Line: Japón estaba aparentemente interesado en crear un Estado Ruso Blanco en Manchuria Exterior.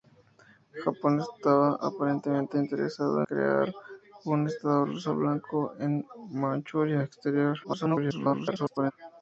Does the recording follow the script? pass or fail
fail